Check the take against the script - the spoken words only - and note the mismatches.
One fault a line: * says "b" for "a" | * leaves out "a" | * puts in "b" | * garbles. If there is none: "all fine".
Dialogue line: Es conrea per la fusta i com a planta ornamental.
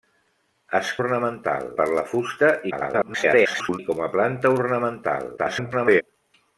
* says "ornamental" for "conrea"
* garbles
* garbles